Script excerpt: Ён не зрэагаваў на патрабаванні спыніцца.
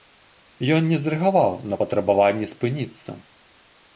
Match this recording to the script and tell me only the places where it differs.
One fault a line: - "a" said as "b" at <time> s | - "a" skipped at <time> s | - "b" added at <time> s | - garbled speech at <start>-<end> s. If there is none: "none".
none